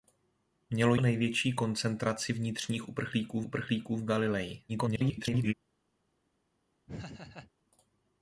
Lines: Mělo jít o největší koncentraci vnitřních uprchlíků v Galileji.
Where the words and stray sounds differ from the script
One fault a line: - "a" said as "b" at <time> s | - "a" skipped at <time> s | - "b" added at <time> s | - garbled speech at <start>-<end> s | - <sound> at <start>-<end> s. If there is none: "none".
- "jít" skipped at 0.9 s
- "uprchlíků" added at 3.5 s
- garbled speech at 4.7-5.5 s
- laugh at 6.9-7.5 s